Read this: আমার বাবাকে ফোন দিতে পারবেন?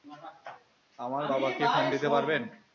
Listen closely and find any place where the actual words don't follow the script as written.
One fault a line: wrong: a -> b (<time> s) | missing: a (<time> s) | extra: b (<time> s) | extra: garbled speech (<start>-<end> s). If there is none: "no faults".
no faults